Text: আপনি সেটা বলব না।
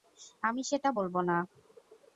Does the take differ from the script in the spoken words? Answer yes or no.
yes